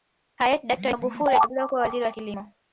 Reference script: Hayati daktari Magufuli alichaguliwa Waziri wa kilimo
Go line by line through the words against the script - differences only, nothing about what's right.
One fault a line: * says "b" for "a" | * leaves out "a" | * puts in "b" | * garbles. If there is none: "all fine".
* puts in "kuwa"